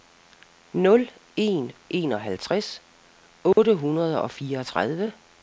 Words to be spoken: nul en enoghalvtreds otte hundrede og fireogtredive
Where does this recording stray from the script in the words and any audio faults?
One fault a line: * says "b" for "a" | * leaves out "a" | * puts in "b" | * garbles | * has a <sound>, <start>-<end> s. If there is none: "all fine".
* has a dropout, 3.5-3.6 s